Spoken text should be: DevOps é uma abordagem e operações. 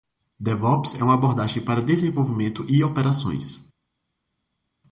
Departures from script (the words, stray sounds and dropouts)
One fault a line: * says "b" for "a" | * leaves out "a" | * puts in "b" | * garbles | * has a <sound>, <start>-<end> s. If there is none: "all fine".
* puts in "para desenvolvimento"